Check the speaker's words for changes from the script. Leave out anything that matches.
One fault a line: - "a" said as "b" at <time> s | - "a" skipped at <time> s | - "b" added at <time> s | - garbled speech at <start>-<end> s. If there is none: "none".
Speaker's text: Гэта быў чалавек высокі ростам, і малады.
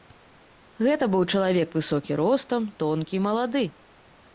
- "тонкі" added at 2.9 s